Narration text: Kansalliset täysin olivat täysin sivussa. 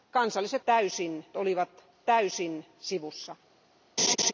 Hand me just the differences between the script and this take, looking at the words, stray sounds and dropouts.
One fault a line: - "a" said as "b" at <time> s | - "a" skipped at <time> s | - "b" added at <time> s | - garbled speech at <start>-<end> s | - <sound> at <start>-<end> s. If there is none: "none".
- laugh at 4.0-4.3 s